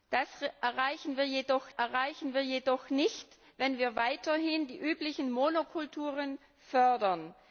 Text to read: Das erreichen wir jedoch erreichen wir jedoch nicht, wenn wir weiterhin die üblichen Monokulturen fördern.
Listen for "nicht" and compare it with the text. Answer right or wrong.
right